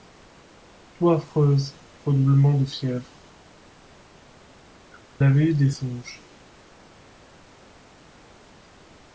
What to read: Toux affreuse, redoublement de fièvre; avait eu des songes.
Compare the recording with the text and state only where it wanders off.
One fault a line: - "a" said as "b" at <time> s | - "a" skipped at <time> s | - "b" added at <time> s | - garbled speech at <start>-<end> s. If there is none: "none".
none